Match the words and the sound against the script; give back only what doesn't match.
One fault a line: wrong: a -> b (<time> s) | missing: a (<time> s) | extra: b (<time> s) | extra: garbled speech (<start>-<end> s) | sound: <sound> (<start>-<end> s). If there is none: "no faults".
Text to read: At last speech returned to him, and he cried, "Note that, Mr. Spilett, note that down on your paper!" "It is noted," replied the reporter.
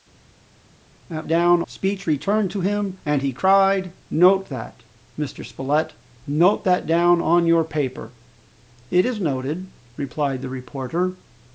wrong: last -> down (1.3 s)